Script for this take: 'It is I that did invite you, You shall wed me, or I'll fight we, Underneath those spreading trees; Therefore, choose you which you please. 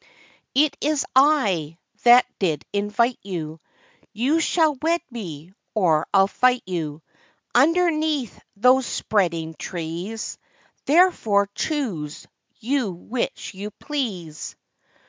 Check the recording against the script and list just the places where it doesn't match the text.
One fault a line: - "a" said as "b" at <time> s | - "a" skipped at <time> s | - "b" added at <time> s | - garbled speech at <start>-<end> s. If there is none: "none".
- "we" said as "you" at 6.6 s